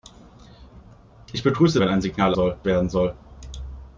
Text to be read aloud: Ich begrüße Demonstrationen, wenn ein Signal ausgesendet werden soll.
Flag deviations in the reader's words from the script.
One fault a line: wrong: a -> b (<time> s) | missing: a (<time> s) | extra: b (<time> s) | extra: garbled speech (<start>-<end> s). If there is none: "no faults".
missing: Demonstrationen (1.8 s)
wrong: ausgesendet -> soll (2.3 s)